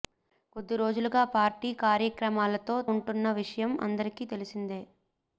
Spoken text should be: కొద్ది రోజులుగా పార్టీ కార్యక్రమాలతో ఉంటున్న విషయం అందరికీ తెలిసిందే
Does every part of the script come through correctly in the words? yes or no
yes